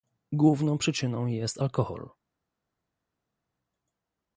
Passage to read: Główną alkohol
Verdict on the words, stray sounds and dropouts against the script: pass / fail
fail